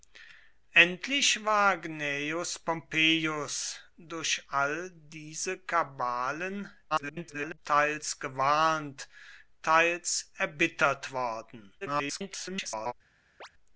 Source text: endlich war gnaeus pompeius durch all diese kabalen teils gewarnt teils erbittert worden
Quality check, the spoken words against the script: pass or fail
fail